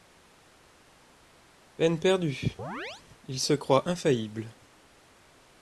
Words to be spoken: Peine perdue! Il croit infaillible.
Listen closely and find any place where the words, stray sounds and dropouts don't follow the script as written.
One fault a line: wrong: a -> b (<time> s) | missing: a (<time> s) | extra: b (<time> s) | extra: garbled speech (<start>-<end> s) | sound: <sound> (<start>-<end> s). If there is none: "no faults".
sound: chirp (2.6-3.0 s)
extra: se (3.4 s)